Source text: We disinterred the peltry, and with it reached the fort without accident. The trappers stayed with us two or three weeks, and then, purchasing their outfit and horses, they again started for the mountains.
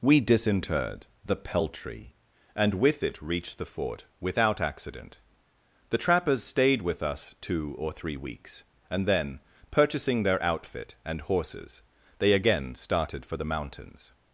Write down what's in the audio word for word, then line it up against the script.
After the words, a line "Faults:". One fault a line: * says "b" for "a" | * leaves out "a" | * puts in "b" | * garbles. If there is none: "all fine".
We disinterred the peltry, and with it reached the fort without accident. The trappers stayed with us two or three weeks, and then, purchasing their outfit and horses, they again started for the mountains.
Faults:
all fine